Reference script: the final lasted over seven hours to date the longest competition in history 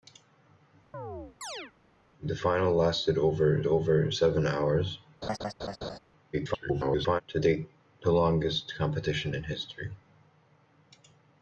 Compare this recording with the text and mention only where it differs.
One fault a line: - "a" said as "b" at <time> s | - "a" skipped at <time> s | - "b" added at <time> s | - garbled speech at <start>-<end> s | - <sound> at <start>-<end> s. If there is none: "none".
- chirp at 0.9-1.7 s
- "over" added at 3.6 s
- laugh at 5.2-6.0 s
- garbled speech at 6.3-7.2 s